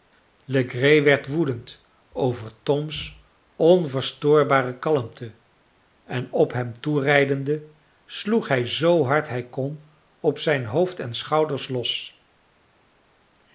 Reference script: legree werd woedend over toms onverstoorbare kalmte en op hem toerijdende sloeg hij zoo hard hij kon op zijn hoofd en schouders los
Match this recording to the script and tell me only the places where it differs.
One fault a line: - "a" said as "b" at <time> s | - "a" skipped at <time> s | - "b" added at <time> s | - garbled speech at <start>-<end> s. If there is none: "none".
none